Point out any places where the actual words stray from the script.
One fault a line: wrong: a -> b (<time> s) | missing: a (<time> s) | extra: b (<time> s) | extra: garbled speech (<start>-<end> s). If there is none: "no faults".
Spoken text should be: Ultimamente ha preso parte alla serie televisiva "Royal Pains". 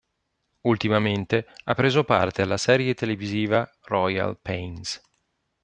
no faults